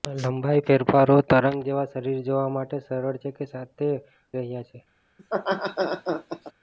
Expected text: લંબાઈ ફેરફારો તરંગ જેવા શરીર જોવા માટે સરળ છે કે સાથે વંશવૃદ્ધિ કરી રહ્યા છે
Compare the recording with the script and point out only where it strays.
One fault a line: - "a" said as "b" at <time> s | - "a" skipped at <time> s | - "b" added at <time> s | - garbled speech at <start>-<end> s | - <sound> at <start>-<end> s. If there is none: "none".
- "વંશવૃદ્ધિ કરી" skipped at 3.9 s
- laugh at 5.2-6.5 s